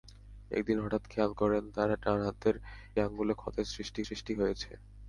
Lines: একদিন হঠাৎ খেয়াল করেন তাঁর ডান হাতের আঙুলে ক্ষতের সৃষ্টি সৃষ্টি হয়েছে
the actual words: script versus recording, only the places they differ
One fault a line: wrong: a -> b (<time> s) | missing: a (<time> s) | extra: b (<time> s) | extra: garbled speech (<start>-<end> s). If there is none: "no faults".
no faults